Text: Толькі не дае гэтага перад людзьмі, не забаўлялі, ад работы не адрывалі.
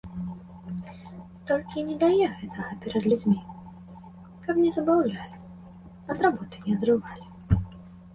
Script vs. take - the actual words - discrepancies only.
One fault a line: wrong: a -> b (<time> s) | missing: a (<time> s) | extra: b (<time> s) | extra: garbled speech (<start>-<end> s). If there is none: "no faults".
extra: каб (4.4 s)